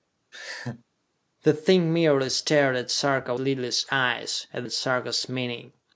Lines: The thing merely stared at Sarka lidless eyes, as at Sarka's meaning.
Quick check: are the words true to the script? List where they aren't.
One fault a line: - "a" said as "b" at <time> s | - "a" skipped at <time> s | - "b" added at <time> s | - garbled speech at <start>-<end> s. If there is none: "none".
none